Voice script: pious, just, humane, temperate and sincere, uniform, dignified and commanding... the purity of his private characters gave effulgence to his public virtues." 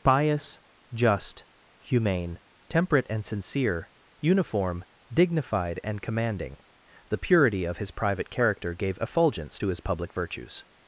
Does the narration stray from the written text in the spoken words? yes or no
yes